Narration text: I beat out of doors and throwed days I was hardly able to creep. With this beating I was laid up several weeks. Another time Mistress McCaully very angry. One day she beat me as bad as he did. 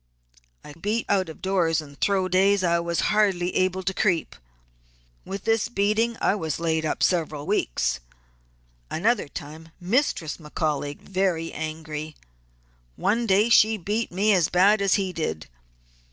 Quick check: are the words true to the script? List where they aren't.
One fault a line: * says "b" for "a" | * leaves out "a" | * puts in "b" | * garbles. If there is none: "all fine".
all fine